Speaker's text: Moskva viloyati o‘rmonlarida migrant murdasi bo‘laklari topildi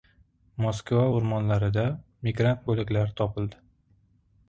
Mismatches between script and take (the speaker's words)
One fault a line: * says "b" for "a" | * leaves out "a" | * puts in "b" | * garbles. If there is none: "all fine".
* leaves out "viloyati"
* leaves out "murdasi"